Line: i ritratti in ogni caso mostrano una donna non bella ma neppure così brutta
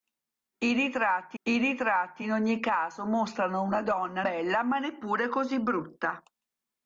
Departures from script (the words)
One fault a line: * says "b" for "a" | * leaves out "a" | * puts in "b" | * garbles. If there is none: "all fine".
* puts in "i ritratti"
* leaves out "non"